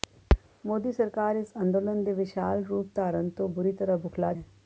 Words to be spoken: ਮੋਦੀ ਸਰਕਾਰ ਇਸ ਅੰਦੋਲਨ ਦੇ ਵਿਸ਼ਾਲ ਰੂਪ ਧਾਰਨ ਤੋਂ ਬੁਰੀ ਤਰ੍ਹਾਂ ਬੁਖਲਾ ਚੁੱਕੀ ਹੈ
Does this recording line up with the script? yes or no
no